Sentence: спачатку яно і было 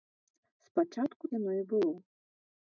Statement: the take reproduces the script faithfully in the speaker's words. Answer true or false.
true